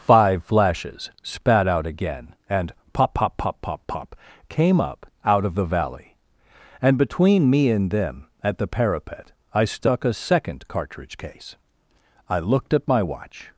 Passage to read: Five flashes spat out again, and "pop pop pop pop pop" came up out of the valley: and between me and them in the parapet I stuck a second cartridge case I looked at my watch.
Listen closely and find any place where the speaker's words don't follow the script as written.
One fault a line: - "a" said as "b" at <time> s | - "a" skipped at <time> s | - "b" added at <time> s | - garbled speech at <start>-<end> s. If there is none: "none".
- "in" said as "at" at 8.4 s